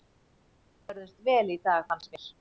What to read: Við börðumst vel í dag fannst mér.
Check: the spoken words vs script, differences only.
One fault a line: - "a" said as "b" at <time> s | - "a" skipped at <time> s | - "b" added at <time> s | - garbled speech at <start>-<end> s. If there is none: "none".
none